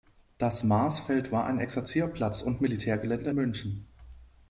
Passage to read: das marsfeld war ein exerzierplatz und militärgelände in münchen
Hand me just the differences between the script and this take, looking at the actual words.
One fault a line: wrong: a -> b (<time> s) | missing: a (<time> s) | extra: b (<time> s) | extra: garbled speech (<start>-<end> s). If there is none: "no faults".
missing: in (3.3 s)